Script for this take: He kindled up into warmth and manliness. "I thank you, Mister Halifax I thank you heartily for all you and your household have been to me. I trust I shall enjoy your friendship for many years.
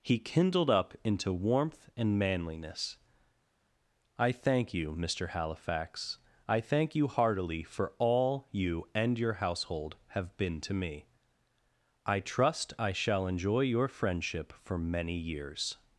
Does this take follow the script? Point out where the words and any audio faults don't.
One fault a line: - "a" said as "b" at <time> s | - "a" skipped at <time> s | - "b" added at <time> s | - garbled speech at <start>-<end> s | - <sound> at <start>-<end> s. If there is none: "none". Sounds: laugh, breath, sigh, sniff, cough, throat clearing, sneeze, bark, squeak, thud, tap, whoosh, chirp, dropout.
none